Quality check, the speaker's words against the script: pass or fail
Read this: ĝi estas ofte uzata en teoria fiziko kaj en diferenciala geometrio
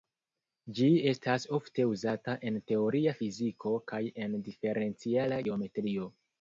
pass